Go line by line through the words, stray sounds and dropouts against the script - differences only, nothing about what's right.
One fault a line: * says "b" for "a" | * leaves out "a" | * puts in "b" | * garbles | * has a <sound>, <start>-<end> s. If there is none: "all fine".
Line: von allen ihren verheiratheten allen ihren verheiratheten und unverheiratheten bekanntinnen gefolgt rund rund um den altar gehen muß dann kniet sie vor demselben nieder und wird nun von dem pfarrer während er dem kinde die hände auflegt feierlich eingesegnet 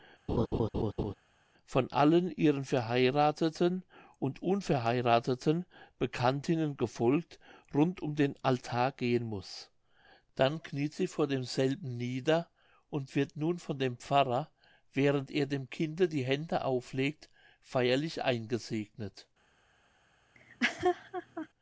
* has a laugh, 0.3-1.1 s
* leaves out "allen ihren verheiratheten"
* leaves out "rund"
* has a laugh, 20.3-21.5 s